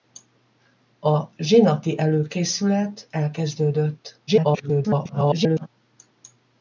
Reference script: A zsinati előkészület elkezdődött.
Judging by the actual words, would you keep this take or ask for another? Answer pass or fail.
fail